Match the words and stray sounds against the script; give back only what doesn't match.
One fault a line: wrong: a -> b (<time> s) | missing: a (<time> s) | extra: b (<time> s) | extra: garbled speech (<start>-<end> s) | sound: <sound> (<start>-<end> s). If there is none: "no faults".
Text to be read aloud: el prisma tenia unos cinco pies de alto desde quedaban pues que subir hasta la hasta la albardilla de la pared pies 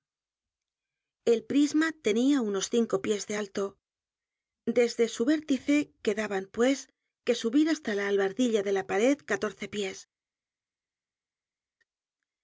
extra: su vértice (5.1 s)
missing: hasta la (8.1 s)
extra: catorce (9.2 s)